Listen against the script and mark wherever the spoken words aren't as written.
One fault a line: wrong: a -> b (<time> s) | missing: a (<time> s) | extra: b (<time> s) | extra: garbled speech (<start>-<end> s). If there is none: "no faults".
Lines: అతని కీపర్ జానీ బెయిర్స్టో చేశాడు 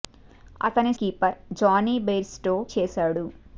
no faults